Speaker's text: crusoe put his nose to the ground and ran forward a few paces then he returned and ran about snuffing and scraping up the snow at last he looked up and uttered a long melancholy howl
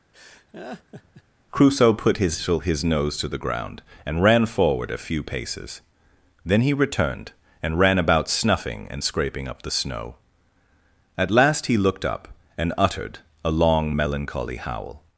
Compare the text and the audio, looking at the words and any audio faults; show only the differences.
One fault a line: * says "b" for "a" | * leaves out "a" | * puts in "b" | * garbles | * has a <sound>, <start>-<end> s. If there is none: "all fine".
* has a laugh, 0.1-1.2 s
* puts in "his"